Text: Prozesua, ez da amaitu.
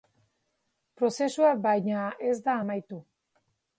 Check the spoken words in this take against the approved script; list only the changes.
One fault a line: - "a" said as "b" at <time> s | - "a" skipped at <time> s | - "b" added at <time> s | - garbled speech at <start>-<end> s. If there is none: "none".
- "baina" added at 1.7 s